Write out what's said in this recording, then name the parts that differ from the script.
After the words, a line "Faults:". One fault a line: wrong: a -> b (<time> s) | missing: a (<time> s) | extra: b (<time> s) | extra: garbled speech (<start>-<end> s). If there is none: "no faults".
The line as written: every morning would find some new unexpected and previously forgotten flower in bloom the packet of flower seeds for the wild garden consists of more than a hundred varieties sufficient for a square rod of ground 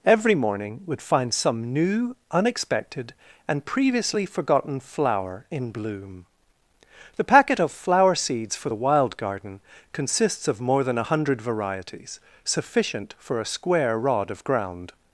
every morning would find some new unexpected and previously forgotten flower in bloom the packet of flower seeds for the wild garden consists of more than a hundred varieties sufficient for a square rod of ground
Faults:
no faults